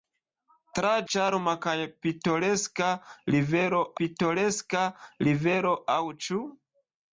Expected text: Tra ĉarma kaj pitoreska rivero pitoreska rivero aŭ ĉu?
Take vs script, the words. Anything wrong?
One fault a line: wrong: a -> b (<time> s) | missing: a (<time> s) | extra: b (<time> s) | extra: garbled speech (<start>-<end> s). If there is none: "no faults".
no faults